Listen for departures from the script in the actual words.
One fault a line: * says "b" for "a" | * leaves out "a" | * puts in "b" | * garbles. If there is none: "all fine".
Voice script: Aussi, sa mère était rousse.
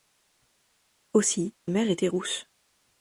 * leaves out "sa"